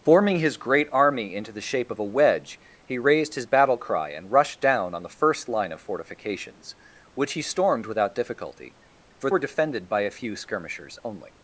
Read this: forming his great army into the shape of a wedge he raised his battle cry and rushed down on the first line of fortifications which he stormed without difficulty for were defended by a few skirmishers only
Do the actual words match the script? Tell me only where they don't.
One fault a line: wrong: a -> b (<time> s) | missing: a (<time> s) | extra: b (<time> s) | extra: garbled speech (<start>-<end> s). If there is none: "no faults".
no faults